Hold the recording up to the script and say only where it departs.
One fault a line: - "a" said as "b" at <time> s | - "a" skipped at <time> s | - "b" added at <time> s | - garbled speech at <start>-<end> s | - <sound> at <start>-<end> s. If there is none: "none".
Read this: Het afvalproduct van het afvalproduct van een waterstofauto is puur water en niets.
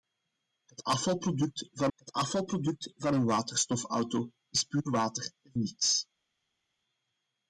none